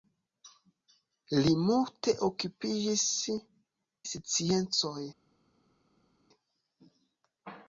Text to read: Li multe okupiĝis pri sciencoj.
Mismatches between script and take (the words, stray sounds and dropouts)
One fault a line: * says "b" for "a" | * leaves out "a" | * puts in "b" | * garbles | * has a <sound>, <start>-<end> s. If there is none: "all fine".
* leaves out "pri"